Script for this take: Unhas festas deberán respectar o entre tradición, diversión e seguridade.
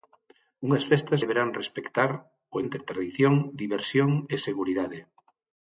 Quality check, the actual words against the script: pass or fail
pass